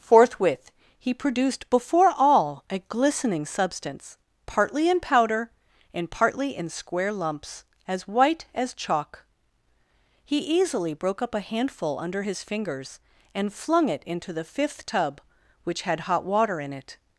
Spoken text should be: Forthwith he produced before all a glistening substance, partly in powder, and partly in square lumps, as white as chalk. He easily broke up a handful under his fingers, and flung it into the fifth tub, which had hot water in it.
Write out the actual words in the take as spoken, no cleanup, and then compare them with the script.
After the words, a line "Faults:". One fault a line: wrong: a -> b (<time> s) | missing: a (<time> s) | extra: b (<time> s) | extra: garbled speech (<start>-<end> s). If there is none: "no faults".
Forthwith he produced before all a glistening substance, partly in powder, and partly in square lumps, as white as chalk. He easily broke up a handful under his fingers, and flung it into the fifth tub, which had hot water in it.
Faults:
no faults